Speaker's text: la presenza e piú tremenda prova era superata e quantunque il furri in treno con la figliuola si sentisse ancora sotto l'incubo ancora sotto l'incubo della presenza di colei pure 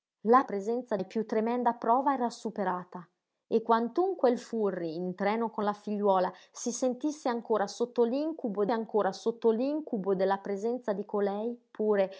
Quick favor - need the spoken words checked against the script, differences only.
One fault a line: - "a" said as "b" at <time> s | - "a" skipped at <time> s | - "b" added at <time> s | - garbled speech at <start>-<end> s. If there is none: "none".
none